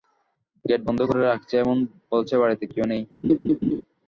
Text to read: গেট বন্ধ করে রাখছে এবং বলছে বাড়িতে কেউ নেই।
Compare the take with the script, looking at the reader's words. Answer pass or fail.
pass